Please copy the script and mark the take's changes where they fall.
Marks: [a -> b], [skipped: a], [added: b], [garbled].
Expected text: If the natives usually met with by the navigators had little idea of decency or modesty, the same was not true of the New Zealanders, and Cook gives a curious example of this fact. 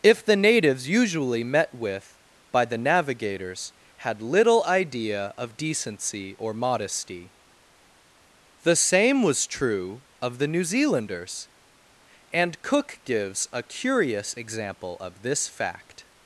If the natives usually met with by the navigators had little idea of decency or modesty, the same was [skipped: not] true of the New Zealanders, and Cook gives a curious example of this fact.